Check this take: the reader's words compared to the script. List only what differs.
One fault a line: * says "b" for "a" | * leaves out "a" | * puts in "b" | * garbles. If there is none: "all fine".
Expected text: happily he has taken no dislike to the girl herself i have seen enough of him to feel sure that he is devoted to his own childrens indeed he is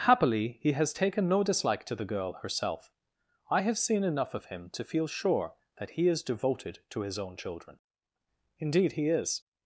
* says "children" for "childrens"